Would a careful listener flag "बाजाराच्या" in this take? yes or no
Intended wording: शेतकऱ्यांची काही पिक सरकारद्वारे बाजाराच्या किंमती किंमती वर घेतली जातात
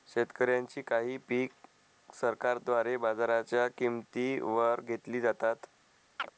no